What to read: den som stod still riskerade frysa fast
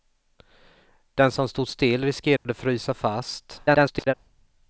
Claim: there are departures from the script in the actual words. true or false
true